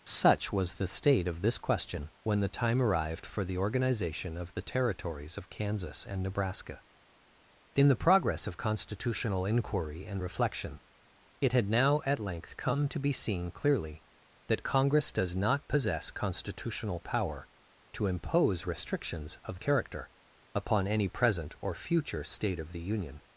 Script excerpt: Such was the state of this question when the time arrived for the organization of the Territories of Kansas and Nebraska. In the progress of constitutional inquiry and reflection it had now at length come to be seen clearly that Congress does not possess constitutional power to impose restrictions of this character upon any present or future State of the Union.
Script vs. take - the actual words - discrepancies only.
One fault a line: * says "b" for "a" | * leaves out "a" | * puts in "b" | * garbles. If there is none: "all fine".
* leaves out "this"